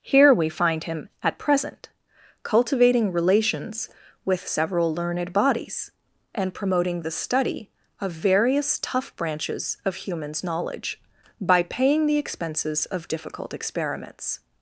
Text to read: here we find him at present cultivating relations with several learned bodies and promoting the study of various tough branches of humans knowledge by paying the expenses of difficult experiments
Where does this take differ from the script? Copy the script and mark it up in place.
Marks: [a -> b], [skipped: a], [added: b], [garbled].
here we find him at present cultivating relations with several learned bodies and promoting the study of various tough branches of humans knowledge by paying the expenses of difficult experiments